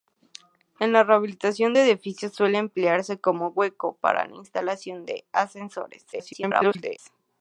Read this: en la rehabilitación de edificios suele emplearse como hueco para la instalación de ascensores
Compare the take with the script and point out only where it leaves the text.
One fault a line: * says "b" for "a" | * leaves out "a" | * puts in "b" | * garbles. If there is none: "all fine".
* garbles